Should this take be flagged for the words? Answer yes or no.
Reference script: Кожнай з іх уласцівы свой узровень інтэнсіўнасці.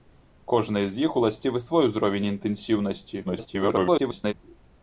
yes